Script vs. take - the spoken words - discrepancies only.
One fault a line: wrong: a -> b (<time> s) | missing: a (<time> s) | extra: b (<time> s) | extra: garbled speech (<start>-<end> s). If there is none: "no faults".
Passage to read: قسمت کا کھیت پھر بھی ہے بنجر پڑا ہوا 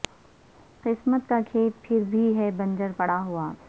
no faults